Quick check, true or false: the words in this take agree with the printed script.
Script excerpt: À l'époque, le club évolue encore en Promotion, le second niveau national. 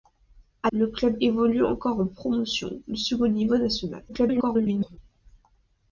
false